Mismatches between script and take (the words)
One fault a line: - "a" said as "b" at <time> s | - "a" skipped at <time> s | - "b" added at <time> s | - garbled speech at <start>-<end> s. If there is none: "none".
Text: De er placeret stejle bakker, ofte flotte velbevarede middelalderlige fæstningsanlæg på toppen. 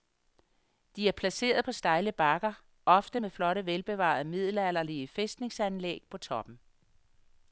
- "på" added at 1.6 s
- "med" added at 3.2 s